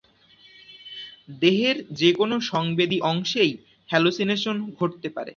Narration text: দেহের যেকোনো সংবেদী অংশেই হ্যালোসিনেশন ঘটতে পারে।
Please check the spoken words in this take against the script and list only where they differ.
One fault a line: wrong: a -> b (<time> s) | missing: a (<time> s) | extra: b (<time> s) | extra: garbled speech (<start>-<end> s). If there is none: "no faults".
no faults